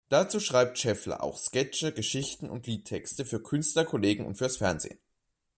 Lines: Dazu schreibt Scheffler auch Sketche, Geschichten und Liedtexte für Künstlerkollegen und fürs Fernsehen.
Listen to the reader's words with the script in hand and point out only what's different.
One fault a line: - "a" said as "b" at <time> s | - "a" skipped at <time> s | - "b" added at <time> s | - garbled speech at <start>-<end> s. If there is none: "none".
none